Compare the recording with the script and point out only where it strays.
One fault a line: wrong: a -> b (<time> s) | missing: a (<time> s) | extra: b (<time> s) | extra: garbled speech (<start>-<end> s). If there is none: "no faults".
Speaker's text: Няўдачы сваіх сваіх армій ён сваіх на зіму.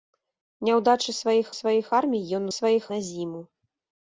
no faults